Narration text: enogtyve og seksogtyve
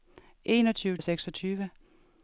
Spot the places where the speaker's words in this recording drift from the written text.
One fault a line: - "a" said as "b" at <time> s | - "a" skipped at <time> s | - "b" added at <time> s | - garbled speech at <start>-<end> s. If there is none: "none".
none